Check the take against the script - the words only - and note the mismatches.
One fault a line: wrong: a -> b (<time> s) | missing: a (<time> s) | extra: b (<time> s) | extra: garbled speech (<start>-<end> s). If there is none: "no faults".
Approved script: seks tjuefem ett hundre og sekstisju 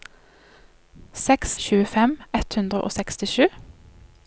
no faults